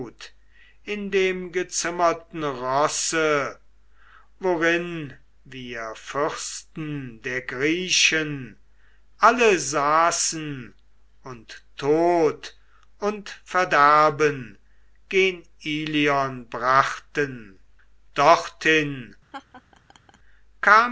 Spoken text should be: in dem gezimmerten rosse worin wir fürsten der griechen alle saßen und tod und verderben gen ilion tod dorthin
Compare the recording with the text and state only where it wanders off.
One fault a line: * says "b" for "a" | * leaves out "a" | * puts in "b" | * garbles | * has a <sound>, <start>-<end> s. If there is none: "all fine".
* says "brachten" for "tod"
* has a laugh, 19.3-20.2 s